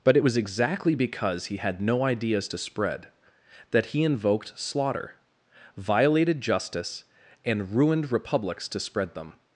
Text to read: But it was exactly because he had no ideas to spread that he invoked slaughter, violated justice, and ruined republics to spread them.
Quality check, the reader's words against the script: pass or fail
pass